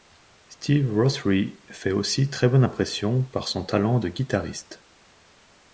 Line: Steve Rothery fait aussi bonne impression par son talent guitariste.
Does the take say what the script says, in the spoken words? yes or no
no